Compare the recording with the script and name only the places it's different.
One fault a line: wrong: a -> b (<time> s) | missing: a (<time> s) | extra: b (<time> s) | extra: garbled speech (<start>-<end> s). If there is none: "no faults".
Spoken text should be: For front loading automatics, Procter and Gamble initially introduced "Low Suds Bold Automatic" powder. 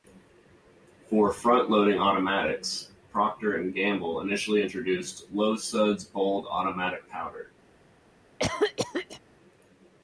no faults